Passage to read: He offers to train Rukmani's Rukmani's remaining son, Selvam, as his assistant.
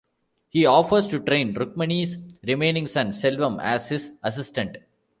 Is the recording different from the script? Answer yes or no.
yes